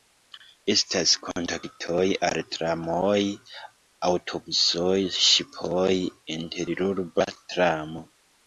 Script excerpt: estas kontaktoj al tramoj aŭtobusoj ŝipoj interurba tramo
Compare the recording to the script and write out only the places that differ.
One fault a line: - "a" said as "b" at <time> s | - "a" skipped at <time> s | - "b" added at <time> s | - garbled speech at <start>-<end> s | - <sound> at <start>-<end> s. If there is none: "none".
none